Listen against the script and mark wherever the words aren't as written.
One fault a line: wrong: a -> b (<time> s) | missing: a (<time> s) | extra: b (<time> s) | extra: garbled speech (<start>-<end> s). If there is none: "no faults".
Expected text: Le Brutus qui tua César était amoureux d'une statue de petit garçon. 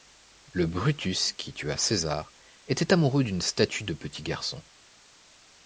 no faults